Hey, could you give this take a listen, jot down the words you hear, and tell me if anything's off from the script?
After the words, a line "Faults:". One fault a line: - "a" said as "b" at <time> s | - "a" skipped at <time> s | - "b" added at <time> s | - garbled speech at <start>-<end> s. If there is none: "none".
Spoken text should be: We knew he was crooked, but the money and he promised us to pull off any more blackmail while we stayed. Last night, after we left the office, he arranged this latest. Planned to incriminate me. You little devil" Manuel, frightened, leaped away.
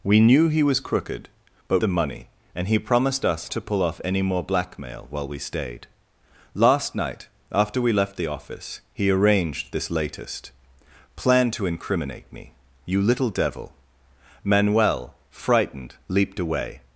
We knew he was crooked, but the money and he promised us to pull off any more blackmail while we stayed. Last night, after we left the office, he arranged this latest. Planned to incriminate me. You little devil" Manuel, frightened, leaped away.
Faults:
none